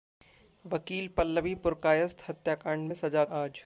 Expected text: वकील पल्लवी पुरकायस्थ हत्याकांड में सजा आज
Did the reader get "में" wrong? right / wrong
right